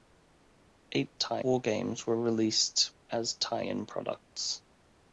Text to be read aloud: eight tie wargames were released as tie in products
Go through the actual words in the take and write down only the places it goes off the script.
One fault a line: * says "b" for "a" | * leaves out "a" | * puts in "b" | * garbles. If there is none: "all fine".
all fine